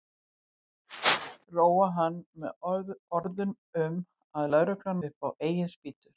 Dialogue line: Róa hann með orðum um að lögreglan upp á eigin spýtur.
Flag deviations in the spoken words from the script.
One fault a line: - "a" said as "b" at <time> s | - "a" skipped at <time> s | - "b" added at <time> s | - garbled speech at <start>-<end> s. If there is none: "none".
none